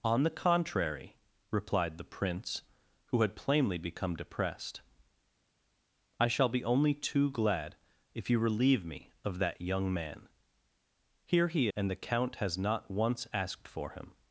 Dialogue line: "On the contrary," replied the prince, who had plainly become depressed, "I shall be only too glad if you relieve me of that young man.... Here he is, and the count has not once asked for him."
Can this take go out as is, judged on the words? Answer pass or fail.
fail